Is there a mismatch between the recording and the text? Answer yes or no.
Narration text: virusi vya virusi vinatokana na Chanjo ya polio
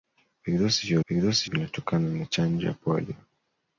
no